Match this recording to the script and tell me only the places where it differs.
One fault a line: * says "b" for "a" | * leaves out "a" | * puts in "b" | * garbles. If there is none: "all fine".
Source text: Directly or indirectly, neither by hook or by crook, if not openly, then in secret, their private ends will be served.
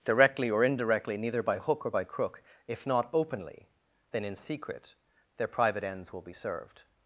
all fine